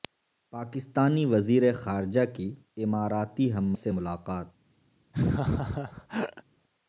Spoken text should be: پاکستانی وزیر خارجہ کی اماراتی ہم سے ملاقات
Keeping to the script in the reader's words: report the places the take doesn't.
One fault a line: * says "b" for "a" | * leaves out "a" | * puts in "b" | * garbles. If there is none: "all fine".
all fine